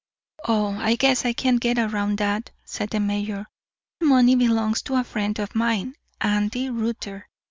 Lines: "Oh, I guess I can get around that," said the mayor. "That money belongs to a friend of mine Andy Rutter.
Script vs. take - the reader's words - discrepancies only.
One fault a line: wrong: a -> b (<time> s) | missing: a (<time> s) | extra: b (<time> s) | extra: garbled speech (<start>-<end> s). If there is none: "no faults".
missing: That (3.5 s)